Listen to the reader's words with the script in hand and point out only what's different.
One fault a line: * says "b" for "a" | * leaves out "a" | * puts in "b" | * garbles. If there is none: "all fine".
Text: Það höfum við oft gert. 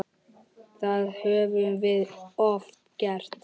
all fine